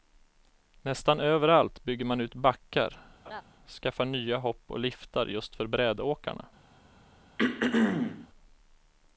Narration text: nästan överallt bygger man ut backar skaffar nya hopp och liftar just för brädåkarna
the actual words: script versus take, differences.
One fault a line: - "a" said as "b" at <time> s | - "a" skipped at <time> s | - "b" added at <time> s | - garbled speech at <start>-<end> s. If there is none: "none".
none